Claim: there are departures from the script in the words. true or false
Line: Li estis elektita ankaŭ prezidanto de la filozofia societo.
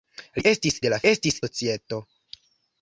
true